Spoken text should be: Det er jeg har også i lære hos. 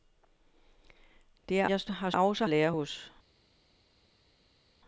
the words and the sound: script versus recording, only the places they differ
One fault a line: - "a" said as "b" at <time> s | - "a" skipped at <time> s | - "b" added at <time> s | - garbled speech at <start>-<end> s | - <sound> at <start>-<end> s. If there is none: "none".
none